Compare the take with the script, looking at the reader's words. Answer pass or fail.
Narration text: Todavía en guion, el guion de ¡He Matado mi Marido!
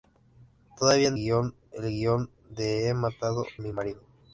pass